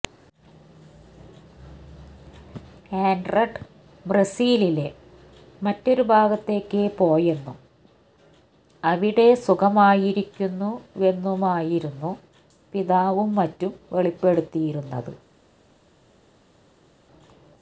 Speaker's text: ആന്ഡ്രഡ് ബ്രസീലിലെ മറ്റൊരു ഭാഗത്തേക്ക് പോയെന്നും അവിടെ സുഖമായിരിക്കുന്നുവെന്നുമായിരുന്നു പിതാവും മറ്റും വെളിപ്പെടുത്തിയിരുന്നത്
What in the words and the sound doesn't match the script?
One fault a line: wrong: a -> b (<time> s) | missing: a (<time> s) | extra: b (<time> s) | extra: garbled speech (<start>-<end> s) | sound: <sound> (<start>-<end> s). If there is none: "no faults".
no faults